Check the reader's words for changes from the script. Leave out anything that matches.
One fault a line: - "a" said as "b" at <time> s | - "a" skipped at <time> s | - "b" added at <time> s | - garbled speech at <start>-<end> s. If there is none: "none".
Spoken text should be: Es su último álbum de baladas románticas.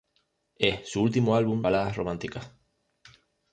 - "de" skipped at 1.6 s